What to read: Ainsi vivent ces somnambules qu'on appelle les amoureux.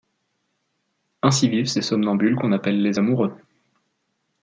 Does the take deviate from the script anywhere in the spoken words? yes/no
no